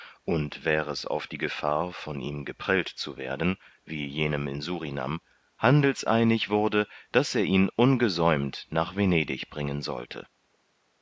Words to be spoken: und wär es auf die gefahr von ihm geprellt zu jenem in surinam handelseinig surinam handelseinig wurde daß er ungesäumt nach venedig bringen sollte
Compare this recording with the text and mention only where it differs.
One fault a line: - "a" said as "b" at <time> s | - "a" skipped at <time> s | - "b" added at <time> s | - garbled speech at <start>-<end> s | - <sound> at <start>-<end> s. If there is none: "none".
- "werden wie" added at 3.2 s
- "surinam handelseinig" skipped at 6.5 s
- "ihn" added at 7.4 s